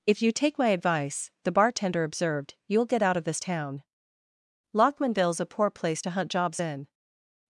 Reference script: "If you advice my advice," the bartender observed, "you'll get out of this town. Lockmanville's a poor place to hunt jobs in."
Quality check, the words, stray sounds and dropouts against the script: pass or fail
fail